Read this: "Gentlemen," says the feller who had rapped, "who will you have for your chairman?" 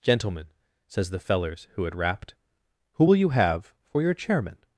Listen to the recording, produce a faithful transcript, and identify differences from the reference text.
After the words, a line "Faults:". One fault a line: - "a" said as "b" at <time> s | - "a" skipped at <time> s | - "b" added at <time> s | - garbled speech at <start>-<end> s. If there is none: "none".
"Gentlemen," says the fellers who had rapped, "who will you have for your chairman?"
Faults:
- "feller" said as "fellers" at 1.2 s